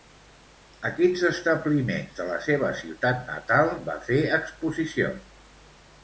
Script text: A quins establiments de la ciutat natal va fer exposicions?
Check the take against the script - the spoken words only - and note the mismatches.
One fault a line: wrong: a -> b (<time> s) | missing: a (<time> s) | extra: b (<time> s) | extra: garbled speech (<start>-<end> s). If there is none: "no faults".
extra: seva (2.5 s)